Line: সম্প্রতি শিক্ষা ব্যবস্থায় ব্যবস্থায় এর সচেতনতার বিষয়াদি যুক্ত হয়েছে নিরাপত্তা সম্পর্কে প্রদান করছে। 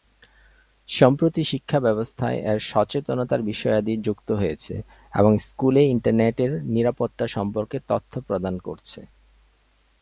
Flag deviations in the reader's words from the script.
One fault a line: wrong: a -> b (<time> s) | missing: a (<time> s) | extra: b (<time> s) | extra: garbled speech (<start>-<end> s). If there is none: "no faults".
missing: ব্যবস্থায় (2.4 s)
extra: এবং স্কুলে ইন্টারনেটের (5.1 s)
extra: তথ্য (7.9 s)